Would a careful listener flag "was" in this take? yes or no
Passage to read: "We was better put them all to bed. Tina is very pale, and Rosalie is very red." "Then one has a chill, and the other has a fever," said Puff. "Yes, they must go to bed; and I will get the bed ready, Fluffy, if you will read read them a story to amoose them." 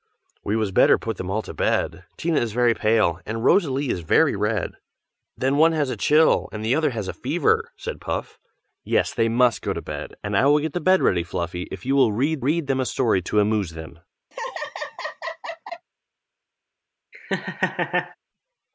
no